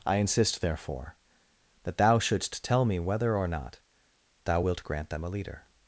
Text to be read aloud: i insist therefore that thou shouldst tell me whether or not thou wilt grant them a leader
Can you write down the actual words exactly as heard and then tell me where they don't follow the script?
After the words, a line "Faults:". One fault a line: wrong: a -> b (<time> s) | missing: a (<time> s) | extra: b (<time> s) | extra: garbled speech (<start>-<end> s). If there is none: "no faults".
i insist therefore that thou shouldst tell me whether or not thou wilt grant them a leader
Faults:
no faults